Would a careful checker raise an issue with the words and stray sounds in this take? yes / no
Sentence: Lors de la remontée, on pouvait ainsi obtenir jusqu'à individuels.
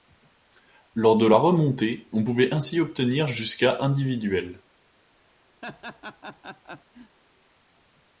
yes